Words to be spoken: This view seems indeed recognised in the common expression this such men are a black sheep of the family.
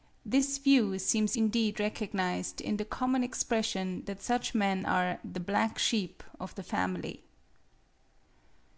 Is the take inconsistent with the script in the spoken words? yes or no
yes